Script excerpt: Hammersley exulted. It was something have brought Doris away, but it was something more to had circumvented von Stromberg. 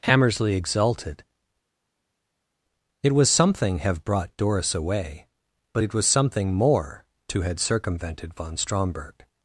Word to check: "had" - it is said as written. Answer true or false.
true